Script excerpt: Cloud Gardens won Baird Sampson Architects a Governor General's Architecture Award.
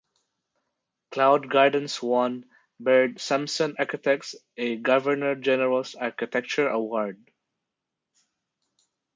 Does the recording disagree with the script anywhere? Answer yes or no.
no